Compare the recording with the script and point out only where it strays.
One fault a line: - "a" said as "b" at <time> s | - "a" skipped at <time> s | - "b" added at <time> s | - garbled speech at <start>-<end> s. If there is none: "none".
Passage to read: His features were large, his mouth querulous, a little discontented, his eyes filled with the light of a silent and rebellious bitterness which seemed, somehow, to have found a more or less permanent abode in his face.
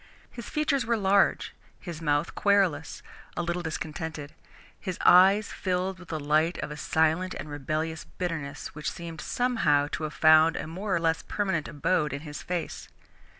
none